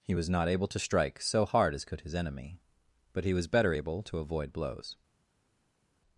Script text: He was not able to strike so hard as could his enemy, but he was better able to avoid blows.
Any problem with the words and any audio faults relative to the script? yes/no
no